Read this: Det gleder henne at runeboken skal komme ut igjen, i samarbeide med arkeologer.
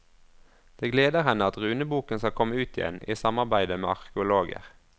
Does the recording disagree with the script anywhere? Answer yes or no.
no